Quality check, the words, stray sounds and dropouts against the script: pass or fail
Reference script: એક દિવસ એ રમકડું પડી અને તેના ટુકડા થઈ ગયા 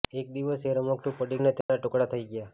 fail